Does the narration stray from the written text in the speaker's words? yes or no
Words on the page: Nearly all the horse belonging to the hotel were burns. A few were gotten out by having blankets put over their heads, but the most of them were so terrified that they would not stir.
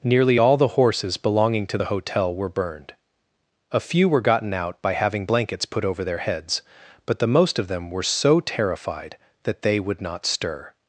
yes